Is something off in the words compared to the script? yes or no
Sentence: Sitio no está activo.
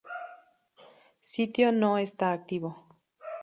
no